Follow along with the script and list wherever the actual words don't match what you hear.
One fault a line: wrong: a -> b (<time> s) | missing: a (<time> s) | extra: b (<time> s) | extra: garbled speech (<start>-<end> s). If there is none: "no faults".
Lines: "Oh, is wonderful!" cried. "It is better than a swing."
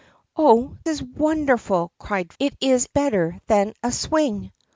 no faults